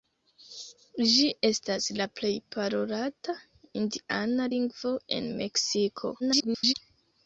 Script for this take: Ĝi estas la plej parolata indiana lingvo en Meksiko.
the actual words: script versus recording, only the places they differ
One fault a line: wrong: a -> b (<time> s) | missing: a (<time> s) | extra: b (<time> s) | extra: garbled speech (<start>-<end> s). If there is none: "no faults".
extra: garbled speech (6.2-6.7 s)